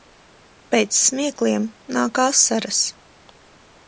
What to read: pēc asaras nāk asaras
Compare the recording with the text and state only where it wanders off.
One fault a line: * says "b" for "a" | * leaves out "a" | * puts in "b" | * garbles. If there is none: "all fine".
* says "smiekliem" for "asaras"